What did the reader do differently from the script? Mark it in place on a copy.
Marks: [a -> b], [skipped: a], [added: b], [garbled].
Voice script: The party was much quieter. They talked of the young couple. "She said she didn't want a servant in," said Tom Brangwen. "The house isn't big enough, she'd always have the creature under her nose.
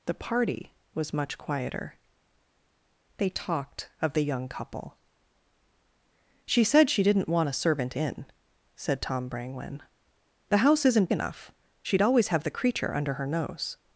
The party was much quieter. They talked of the young couple. "She said she didn't want a servant in," said Tom Brangwen. "The house isn't [skipped: big] enough, she'd always have the creature under her nose.